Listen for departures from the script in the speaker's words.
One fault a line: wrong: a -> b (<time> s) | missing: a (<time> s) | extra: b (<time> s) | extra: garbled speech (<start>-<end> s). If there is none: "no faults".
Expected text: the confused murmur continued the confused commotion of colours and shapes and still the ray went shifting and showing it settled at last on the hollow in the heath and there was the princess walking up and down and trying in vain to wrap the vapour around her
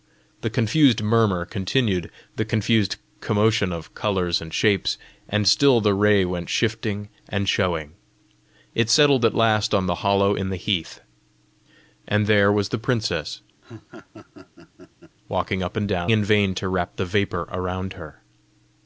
missing: and trying (16.1 s)